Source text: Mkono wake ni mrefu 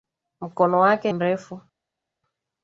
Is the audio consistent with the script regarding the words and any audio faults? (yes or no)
no